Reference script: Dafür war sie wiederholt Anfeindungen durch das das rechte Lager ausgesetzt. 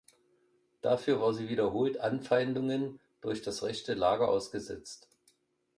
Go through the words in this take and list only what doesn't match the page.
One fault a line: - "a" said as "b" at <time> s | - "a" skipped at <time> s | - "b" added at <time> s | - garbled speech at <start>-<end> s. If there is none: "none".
- "das" skipped at 3.6 s